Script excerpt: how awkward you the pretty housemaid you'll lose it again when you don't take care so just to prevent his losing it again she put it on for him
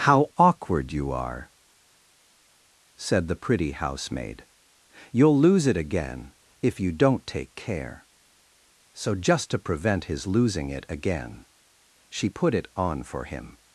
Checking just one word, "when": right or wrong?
wrong